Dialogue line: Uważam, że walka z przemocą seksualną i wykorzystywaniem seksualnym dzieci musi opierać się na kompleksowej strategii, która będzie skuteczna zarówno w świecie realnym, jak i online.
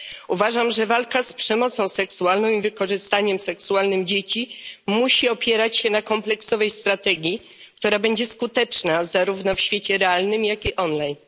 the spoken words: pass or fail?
pass